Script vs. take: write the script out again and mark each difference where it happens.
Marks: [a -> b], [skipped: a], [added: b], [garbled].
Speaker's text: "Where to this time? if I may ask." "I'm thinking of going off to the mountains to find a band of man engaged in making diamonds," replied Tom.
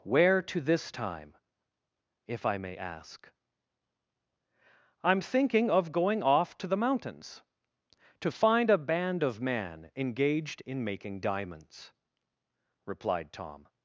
"Where to this time? if I may ask." "I'm thinking of going off to the mountains to find a band of man engaged in making diamonds," replied Tom.